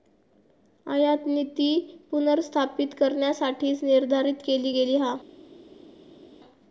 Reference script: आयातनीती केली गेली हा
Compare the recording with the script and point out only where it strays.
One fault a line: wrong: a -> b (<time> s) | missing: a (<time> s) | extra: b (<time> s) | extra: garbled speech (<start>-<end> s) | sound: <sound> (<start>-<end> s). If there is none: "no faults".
extra: पुनर्स्थापित करण्यासाठीच निर्धारित (2.1 s)